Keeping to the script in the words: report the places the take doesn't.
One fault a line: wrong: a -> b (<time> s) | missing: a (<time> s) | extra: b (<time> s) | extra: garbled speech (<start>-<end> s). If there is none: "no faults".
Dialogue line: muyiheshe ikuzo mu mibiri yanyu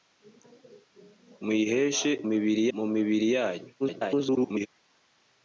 wrong: ikuzo -> mibiri (2.3 s)
extra: garbled speech (3.8-4.7 s)